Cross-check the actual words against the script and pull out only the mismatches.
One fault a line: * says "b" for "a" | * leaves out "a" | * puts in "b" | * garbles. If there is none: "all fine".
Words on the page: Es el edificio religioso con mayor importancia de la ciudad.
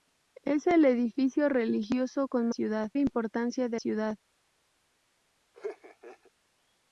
* says "ciudad" for "mayor"
* leaves out "la"